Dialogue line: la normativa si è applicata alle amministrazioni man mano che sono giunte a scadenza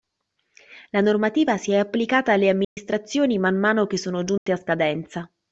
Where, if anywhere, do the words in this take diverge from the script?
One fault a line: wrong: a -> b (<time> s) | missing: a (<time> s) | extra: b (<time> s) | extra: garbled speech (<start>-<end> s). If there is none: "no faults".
no faults